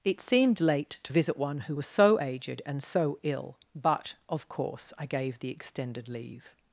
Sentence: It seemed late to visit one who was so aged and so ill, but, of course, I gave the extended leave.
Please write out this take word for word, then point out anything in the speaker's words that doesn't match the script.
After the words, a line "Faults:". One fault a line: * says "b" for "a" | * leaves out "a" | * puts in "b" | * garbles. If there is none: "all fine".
It seemed late to visit one who was so aged and so ill, but, of course, I gave the extended leave.
Faults:
all fine